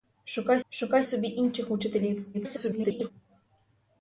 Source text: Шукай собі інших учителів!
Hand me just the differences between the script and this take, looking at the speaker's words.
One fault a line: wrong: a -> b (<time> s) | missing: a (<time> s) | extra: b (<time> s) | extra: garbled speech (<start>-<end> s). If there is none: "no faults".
extra: шукай (0.7 s)
extra: garbled speech (2.3-3.1 s)